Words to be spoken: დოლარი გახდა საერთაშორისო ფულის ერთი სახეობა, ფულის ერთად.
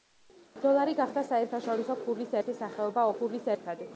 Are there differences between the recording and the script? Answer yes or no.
no